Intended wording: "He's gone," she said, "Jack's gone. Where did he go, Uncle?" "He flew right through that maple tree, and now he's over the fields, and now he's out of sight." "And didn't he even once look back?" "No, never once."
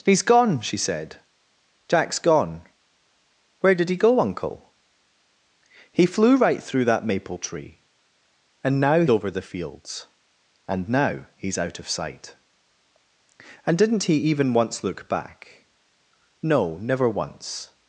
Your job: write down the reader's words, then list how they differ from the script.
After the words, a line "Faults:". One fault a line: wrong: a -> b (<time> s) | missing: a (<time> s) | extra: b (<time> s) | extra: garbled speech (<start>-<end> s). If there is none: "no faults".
"He's gone," she said, "Jack's gone. Where did he go, Uncle?" "He flew right through that maple tree, and now over the fields, and now he's out of sight." "And didn't he even once look back?" "No, never once."
Faults:
missing: he's (9.1 s)